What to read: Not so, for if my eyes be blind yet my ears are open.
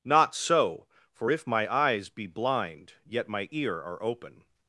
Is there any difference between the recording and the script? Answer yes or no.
yes